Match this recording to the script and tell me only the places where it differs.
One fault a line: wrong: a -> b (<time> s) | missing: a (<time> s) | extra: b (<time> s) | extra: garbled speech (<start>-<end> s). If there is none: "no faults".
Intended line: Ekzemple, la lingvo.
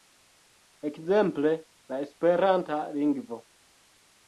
extra: esperanta (2.1 s)